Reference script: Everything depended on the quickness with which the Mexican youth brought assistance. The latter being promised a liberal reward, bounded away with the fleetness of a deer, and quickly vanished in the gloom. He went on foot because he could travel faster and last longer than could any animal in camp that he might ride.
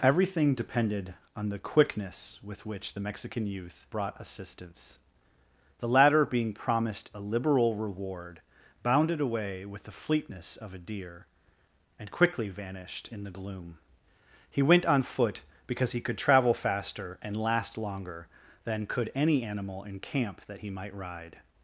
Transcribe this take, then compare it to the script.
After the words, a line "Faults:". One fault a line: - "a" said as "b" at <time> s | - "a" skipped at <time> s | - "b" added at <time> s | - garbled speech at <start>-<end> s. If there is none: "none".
Everything depended on the quickness with which the Mexican youth brought assistance. The latter being promised a liberal reward, bounded away with the fleetness of a deer, and quickly vanished in the gloom. He went on foot because he could travel faster and last longer than could any animal in camp that he might ride.
Faults:
none